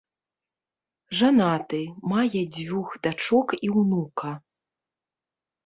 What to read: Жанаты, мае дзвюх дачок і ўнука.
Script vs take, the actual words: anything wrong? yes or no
no